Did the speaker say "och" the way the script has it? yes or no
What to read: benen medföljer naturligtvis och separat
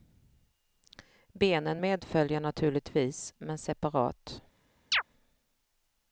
no